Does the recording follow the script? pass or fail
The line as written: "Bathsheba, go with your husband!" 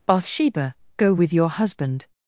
pass